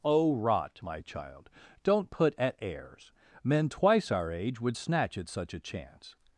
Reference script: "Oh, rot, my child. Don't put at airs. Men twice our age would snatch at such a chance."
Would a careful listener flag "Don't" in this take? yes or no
no